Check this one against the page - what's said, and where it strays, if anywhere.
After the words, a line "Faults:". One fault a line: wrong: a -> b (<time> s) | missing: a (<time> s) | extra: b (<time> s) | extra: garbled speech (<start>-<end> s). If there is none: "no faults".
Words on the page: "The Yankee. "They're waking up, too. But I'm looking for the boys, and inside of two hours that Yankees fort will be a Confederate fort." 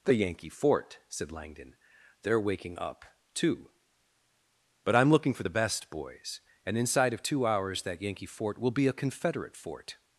"The Yankee fort," said Langdon. "They're waking up, too. But I'm looking for the best, boys, and inside of two hours that Yankee fort will be a Confederate fort."
Faults:
extra: fort said Langdon (0.5 s)
extra: best (5.5 s)
wrong: Yankees -> Yankee (8.0 s)